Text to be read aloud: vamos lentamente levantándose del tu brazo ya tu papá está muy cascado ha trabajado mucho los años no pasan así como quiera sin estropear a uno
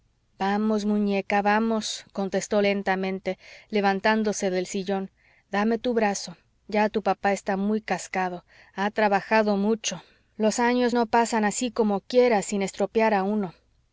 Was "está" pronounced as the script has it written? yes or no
yes